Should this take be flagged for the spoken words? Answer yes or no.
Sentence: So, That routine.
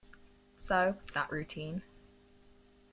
no